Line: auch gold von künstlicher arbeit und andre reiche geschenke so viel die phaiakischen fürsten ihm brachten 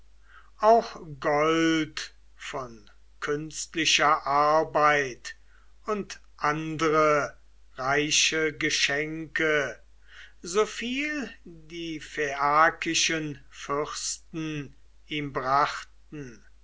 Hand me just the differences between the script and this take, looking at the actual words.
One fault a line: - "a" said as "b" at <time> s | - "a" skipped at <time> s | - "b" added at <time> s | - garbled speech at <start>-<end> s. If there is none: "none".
none